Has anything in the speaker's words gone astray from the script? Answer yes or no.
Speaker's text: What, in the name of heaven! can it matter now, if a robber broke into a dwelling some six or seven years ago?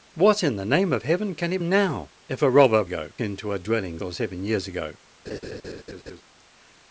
yes